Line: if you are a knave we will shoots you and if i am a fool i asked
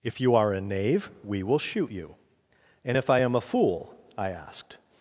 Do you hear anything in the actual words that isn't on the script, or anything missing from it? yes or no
yes